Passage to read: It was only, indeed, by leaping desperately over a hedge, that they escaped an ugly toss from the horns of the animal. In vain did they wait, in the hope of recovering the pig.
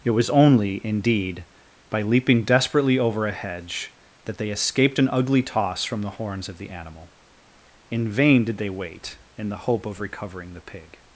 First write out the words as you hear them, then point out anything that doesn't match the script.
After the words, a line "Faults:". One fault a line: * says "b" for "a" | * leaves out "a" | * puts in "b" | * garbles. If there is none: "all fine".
It was only, indeed, by leaping desperately over a hedge, that they escaped an ugly toss from the horns of the animal. In vain did they wait, in the hope of recovering the pig.
Faults:
all fine